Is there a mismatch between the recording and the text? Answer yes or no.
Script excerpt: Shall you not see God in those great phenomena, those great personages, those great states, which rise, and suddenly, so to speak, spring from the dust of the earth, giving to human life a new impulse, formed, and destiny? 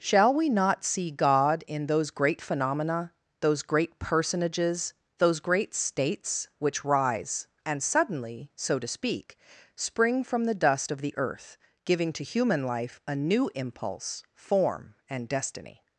yes